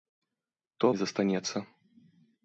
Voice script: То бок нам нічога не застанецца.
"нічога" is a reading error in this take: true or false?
true